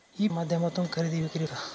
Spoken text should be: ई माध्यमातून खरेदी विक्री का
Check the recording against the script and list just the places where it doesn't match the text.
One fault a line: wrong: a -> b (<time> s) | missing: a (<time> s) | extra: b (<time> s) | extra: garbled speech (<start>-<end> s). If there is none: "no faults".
no faults